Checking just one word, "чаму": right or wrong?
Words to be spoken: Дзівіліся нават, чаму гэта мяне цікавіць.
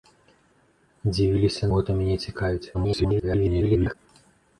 wrong